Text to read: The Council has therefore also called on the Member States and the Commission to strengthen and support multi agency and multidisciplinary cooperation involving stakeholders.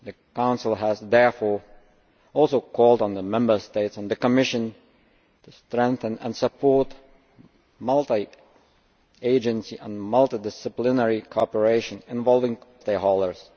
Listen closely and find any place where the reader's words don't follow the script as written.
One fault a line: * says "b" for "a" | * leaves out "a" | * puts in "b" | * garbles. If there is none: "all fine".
all fine